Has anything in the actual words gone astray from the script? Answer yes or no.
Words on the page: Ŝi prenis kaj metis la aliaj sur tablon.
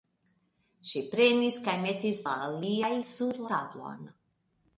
no